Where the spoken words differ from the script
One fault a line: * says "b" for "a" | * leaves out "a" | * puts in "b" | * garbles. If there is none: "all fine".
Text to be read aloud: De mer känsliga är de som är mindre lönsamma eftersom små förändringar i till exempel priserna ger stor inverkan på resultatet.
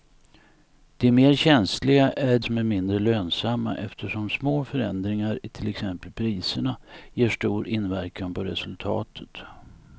* leaves out "de"